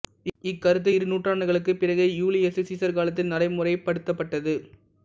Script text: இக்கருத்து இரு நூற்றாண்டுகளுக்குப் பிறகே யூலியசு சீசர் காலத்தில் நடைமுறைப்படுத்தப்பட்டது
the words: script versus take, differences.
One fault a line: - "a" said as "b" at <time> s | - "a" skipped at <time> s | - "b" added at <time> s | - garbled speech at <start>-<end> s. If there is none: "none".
none